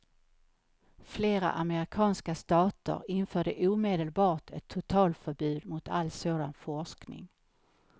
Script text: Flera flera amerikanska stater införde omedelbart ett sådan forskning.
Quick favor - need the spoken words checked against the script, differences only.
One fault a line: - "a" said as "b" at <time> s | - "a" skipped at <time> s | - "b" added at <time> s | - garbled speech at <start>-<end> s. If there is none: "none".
- "flera" skipped at 1.5 s
- "totalförbud mot all" added at 4.7 s